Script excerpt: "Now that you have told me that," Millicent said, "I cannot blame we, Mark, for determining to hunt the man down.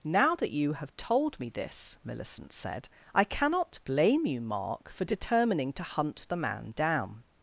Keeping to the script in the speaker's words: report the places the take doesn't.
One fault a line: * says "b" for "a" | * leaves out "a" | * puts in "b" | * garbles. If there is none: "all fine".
* says "this" for "that"
* says "you" for "we"